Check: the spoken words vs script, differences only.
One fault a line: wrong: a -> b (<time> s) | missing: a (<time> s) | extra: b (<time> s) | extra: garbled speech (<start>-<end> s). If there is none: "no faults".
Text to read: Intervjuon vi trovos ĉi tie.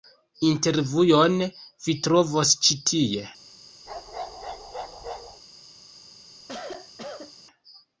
no faults